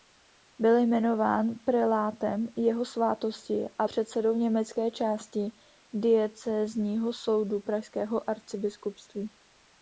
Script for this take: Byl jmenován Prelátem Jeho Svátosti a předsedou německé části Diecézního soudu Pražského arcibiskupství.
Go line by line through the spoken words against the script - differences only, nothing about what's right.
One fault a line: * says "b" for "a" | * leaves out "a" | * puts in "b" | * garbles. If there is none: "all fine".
all fine